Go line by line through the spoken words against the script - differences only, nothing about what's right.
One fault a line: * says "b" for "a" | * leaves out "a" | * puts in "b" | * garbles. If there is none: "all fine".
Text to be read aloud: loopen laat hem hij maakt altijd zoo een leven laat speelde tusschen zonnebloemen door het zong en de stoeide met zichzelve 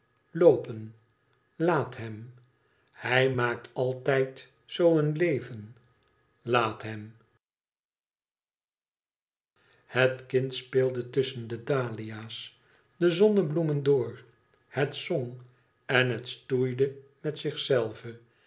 * puts in "hem het kind"
* puts in "de dahlia's de"
* says "het" for "de"